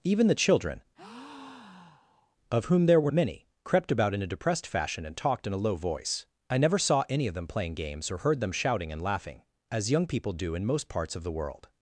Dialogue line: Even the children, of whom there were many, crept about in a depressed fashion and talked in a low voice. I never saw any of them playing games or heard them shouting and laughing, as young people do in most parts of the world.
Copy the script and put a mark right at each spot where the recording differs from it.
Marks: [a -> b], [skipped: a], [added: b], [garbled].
Even the children, of whom there were many, crept about in a depressed fashion and talked in a low voice. I never saw any of them playing games or heard them shouting and laughing, as young people do in most parts of the world.